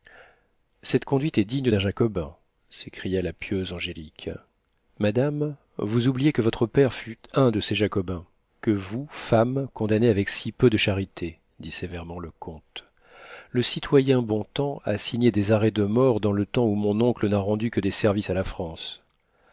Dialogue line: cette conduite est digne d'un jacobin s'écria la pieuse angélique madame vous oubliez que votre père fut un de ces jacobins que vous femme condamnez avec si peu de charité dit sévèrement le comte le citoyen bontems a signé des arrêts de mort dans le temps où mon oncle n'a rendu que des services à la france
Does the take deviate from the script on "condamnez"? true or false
false